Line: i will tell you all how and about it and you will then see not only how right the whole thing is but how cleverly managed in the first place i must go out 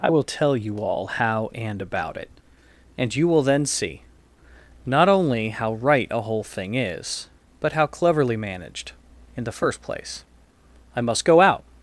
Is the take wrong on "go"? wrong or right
right